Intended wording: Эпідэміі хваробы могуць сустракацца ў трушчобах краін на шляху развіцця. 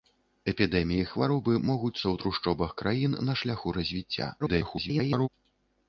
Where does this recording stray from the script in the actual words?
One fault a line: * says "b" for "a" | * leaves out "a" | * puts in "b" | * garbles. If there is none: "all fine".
* leaves out "сустракацца"
* garbles